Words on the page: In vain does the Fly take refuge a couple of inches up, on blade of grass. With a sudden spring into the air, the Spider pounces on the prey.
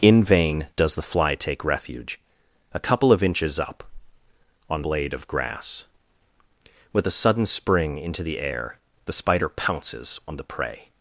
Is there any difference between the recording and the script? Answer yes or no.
no